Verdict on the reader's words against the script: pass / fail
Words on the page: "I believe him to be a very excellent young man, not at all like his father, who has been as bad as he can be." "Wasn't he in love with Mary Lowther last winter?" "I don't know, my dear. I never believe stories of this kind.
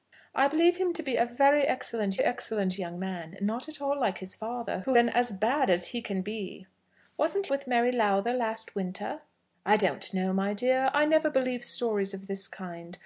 fail